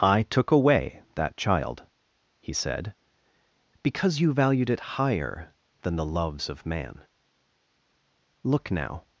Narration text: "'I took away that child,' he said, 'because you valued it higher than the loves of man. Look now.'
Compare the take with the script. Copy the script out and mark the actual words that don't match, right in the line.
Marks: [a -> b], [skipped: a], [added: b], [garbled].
"'I took away that child,' he said, 'because you valued it higher than the loves of man. Look now.'